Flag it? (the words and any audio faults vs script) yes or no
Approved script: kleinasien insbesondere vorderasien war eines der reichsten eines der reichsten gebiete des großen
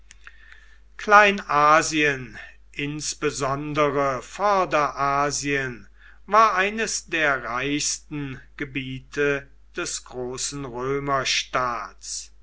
yes